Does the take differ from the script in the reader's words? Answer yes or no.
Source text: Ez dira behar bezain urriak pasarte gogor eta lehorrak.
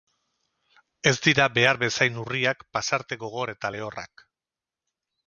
no